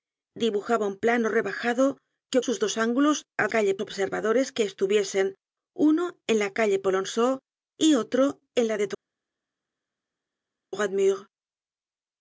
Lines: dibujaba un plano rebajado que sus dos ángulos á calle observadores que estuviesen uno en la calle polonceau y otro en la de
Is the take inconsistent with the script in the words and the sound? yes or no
no